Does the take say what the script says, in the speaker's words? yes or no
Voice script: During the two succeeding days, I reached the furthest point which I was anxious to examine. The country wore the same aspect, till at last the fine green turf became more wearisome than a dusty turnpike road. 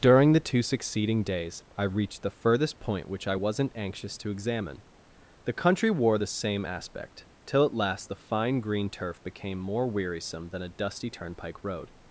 no